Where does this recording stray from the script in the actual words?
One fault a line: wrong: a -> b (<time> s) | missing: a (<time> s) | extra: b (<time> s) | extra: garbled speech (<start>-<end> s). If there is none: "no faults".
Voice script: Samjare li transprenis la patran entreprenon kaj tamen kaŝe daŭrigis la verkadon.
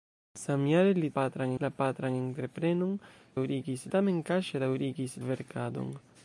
wrong: transprenis -> patran (1.1 s)
wrong: kaj -> daŭrigis (3.3 s)
missing: la (5.2 s)